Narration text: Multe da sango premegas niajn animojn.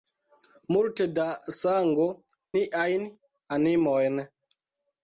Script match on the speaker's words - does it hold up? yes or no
no